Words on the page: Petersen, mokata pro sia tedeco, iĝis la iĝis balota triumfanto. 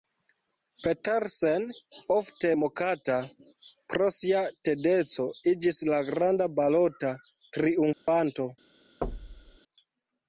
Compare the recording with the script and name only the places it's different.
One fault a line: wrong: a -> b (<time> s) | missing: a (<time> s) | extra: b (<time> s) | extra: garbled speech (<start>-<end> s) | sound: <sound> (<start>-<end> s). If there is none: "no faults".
extra: ofte (2.1 s)
wrong: iĝis -> granda (6.1 s)
sound: dropout (7.9-8.1 s)
sound: thud (9.0-9.6 s)